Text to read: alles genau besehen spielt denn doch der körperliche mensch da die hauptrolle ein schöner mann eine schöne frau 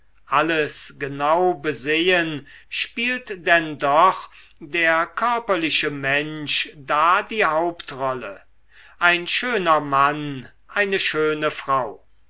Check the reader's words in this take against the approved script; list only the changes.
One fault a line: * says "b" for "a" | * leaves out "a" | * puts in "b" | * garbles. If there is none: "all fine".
all fine